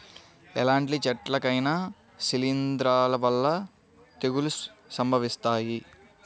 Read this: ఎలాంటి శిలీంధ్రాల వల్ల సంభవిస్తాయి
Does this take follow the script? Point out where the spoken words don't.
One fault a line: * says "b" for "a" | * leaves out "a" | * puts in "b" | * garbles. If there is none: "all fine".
* puts in "చెట్లకైనా"
* puts in "తెగుళ్ళు"